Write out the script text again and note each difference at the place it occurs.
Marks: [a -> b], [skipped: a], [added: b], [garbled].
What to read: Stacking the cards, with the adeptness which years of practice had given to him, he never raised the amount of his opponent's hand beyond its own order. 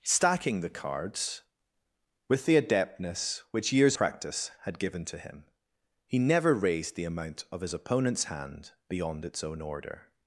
Stacking the cards, with the adeptness which years [skipped: of] practice had given to him, he never raised the amount of his opponent's hand beyond its own order.